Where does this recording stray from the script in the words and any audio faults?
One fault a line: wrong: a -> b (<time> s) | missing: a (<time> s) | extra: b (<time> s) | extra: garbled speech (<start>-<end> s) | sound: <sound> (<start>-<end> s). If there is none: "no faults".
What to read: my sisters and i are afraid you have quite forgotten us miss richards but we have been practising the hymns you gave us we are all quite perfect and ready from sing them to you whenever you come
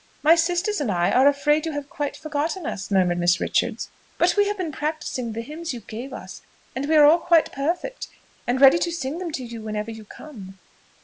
extra: murmured (2.9 s)
extra: and (6.7 s)
wrong: from -> to (8.8 s)